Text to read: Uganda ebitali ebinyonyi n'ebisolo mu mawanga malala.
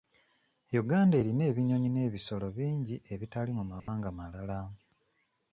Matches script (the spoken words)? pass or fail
fail